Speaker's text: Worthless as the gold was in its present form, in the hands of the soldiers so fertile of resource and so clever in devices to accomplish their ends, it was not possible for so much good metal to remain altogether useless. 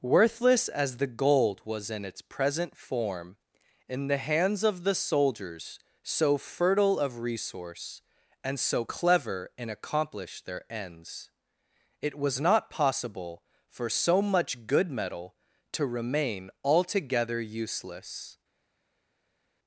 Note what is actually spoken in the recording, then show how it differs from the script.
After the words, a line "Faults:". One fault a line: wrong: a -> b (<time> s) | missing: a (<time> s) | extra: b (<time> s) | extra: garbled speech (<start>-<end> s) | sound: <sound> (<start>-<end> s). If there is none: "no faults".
Worthless as the gold was in its present form, in the hands of the soldiers so fertile of resource and so clever in accomplish their ends, it was not possible for so much good metal to remain altogether useless.
Faults:
missing: devices to (9.7 s)